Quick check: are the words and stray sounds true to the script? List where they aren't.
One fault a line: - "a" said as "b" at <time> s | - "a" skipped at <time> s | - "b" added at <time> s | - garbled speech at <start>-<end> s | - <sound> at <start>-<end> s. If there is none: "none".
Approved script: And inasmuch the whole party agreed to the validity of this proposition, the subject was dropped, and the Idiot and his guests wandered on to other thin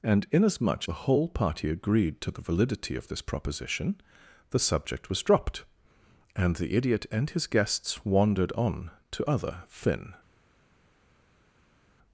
none